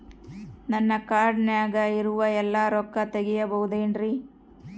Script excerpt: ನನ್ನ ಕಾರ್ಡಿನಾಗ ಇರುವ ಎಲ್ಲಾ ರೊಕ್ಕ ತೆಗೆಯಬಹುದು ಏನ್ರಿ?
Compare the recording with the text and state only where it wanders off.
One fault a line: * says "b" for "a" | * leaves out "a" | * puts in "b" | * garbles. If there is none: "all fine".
all fine